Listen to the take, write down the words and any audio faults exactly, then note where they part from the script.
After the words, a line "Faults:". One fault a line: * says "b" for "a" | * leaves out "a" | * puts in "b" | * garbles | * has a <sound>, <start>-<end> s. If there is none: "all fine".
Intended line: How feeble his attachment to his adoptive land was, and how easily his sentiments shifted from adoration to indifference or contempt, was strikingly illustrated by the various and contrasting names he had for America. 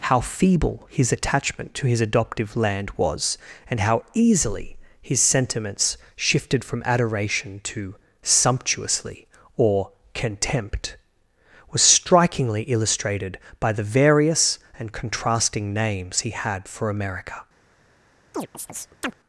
How feeble his attachment to his adoptive land was, and how easily his sentiments shifted from adoration to sumptuously or contempt, was strikingly illustrated by the various and contrasting names he had for America.
Faults:
* says "sumptuously" for "indifference"
* has a chirp, 18.3-19.2 s